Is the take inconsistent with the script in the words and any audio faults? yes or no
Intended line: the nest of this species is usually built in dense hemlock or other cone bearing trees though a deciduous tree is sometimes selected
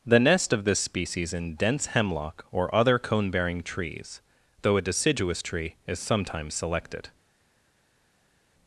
yes